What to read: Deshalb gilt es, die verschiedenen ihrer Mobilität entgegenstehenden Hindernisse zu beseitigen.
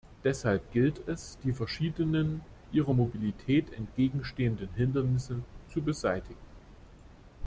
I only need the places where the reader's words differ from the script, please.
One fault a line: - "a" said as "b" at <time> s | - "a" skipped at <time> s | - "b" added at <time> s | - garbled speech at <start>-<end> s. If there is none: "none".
none